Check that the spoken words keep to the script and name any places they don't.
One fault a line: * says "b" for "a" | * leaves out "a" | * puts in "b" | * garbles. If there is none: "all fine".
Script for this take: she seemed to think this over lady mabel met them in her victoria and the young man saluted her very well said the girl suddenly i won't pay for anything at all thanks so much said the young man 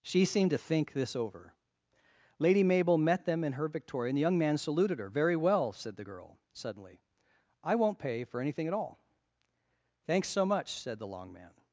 * says "long" for "young"